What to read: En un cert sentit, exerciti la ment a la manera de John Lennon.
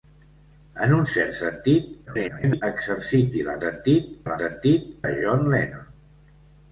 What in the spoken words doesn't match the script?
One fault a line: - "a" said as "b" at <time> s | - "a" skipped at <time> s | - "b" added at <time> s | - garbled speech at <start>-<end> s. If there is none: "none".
- garbled speech at 2.1-2.6 s
- "ment" said as "sentit" at 3.6 s
- "manera" said as "sentit" at 4.4 s